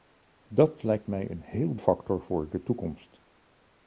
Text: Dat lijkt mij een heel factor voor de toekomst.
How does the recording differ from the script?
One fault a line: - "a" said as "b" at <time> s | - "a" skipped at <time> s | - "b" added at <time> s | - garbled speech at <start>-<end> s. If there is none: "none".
none